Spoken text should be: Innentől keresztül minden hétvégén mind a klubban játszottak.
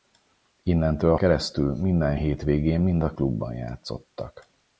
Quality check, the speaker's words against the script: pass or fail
pass